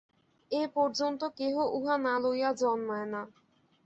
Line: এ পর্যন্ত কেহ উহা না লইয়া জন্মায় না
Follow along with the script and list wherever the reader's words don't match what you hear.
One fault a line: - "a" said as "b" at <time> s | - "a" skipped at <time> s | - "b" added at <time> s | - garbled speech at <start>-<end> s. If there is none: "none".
none